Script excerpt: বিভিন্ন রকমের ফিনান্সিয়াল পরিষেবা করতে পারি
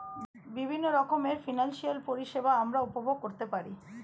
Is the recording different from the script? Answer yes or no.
yes